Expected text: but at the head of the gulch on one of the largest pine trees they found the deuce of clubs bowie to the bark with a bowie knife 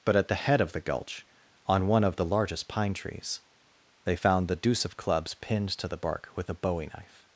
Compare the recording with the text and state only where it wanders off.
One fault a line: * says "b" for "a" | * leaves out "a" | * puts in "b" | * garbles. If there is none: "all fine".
* says "pinned" for "bowie"